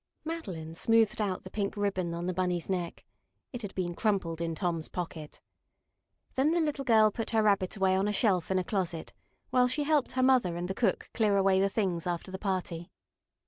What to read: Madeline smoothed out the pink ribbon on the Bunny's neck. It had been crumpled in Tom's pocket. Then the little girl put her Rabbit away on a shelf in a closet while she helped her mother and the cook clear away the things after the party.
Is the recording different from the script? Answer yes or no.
no